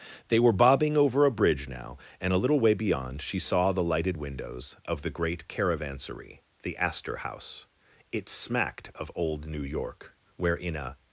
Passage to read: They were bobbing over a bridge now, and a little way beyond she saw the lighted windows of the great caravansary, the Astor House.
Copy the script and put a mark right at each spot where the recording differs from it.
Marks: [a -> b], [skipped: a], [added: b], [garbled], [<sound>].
They were bobbing over a bridge now, and a little way beyond she saw the lighted windows of the great caravansary, the Astor House. [added: It smacked of old New York where in a]